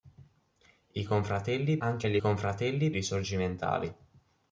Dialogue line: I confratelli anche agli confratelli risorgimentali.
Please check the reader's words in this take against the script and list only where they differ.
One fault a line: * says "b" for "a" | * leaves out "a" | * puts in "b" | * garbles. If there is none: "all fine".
all fine